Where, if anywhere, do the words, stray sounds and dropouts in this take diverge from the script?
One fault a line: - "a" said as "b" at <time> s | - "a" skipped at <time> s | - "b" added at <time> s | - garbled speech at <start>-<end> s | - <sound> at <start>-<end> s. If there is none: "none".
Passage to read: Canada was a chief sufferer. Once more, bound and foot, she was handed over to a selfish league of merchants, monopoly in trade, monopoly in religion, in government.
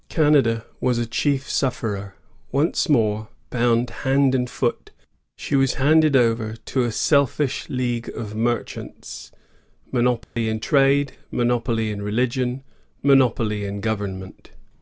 - "hand" added at 4.0 s
- dropout at 10.2-10.4 s
- "monopoly" added at 13.0 s